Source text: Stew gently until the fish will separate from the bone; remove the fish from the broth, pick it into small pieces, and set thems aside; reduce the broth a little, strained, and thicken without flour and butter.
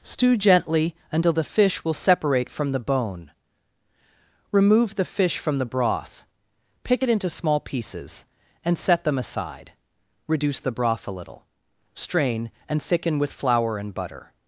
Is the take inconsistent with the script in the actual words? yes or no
yes